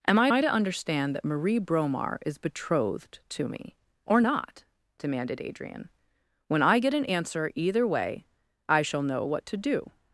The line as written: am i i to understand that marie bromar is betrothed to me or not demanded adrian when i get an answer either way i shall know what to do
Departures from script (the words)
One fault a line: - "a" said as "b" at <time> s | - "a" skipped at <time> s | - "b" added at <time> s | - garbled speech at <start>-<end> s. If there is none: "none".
none